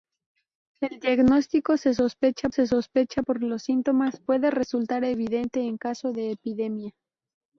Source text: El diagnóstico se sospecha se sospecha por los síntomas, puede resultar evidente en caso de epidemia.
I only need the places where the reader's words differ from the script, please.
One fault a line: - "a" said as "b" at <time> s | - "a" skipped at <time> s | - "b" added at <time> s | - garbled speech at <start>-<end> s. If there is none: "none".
none